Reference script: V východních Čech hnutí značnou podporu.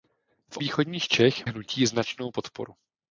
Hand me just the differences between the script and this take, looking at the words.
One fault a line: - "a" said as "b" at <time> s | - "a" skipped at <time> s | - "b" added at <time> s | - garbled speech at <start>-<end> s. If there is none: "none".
none